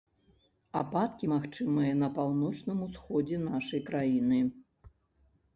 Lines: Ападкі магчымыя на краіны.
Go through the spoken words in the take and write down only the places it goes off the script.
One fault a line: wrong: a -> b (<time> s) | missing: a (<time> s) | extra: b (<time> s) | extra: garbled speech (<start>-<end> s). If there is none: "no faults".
extra: паўночным усходзе нашай (2.2 s)